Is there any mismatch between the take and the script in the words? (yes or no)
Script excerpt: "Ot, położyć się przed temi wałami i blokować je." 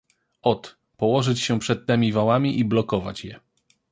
no